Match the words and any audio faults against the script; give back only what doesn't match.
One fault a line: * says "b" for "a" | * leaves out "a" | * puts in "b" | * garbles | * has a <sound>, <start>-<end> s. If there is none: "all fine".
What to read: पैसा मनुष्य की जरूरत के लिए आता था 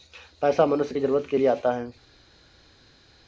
* says "है" for "था"